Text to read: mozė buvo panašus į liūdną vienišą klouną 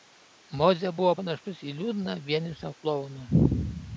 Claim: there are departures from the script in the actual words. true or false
false